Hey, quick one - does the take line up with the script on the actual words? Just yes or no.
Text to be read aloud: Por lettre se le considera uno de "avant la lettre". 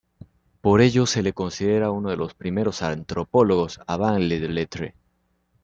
no